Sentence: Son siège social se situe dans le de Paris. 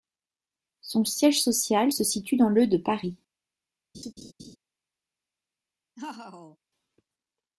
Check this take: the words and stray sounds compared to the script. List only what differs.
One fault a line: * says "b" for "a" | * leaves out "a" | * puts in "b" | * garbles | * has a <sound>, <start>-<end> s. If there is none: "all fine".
* has a laugh, 3.9-4.6 s
* has a laugh, 6.0-6.6 s